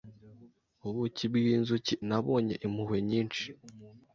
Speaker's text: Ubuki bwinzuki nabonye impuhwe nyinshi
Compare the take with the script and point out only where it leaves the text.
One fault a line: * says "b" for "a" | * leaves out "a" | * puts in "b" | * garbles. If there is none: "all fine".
all fine